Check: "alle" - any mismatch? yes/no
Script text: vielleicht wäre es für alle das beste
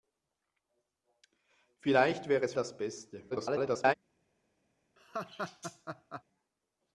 yes